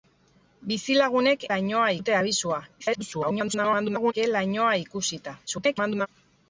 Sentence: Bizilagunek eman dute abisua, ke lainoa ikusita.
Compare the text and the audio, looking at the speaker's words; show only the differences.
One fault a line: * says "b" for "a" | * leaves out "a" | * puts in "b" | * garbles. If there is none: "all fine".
* says "lainoa" for "eman"
* garbles
* garbles